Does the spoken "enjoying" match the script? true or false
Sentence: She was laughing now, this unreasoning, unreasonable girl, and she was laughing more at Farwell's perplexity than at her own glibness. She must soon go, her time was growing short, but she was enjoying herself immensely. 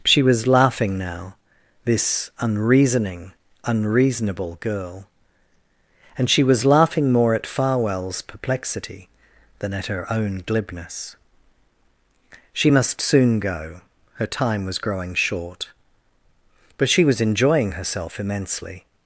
true